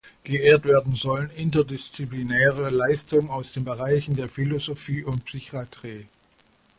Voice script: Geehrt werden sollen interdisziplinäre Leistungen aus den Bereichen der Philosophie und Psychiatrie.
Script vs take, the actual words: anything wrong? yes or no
no